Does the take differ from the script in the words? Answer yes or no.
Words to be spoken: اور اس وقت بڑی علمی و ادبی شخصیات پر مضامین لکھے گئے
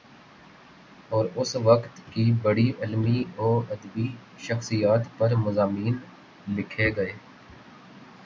yes